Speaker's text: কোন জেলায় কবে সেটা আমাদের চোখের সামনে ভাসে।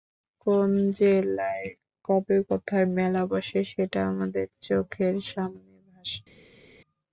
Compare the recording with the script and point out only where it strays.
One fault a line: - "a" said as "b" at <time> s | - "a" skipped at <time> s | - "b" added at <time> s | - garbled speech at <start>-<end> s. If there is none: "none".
- "কোথায় মেলা বসে" added at 2.5 s